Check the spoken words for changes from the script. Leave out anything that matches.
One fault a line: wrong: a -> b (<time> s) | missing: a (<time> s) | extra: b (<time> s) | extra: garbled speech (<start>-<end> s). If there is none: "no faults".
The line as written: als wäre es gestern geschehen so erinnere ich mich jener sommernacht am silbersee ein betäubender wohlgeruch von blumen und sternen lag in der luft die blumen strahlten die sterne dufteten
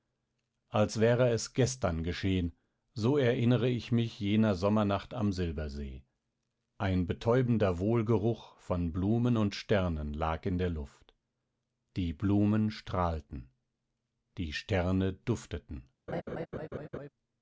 no faults